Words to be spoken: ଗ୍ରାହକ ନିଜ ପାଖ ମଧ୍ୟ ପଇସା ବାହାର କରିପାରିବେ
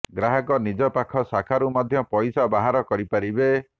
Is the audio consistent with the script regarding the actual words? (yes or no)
no